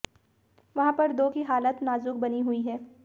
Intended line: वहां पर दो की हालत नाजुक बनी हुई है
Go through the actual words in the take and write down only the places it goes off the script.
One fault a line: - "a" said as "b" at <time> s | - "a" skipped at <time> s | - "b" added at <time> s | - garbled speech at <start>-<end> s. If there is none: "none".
none